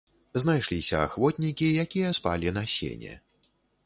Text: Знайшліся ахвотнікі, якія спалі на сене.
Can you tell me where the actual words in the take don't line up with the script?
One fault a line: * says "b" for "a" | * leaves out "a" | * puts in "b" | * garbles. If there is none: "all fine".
all fine